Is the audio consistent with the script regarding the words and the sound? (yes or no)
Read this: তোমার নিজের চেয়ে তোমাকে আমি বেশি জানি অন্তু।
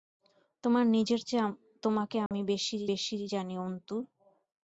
no